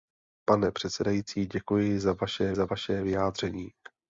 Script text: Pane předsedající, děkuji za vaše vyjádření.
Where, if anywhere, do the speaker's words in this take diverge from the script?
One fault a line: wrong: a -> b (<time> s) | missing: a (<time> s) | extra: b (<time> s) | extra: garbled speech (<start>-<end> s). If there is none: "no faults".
extra: za vaše (2.5 s)